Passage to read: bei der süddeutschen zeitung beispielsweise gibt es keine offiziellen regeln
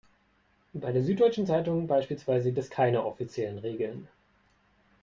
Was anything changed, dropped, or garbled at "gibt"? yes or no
yes